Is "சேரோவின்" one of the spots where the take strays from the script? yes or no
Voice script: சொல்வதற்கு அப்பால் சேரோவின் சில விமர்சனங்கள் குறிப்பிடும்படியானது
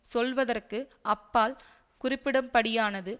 yes